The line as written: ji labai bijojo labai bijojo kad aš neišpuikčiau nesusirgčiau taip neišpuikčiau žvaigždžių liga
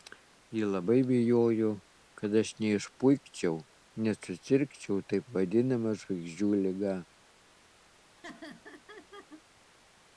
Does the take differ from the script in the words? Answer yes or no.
yes